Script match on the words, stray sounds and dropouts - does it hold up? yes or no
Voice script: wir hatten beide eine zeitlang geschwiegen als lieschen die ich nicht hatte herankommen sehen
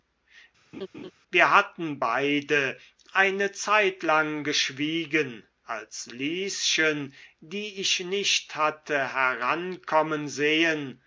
no